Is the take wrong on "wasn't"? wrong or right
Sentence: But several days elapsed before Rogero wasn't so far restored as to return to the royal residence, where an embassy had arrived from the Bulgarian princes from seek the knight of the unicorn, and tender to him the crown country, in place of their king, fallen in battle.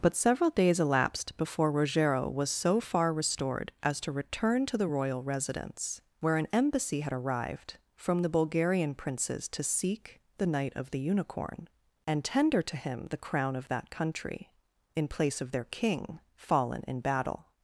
wrong